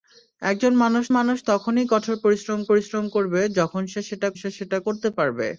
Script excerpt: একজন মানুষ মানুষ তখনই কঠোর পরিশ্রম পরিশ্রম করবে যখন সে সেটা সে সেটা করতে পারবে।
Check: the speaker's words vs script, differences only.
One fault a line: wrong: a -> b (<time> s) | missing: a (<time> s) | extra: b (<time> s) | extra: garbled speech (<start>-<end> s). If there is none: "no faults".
no faults